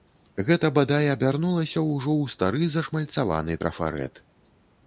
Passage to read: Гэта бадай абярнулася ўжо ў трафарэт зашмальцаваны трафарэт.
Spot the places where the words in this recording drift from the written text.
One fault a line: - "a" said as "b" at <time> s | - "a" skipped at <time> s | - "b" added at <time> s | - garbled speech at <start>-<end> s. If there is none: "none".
- "трафарэт" said as "стары" at 2.4 s